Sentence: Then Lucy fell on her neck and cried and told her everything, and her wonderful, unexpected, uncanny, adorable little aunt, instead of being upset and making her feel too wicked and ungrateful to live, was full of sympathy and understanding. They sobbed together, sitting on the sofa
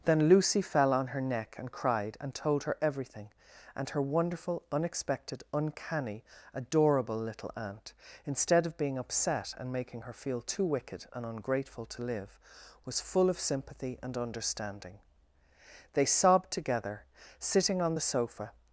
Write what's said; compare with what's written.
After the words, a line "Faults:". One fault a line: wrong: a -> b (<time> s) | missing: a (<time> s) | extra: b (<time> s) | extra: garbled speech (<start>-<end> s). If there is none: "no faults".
Then Lucy fell on her neck and cried and told her everything, and her wonderful, unexpected, uncanny, adorable little aunt, instead of being upset and making her feel too wicked and ungrateful to live, was full of sympathy and understanding. They sobbed together, sitting on the sofa
Faults:
no faults